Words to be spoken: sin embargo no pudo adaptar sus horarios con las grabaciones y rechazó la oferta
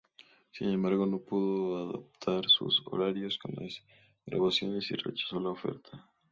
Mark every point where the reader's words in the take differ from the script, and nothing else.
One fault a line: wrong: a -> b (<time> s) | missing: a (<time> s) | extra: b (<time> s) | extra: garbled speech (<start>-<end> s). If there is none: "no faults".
no faults